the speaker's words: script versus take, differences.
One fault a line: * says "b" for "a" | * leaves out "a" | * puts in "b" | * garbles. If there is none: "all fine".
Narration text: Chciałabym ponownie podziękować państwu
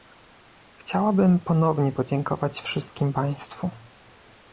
* puts in "wszystkim"